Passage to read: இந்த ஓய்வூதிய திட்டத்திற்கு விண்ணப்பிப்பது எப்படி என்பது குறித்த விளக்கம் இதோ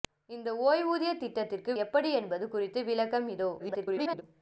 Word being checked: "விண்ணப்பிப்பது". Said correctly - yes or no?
no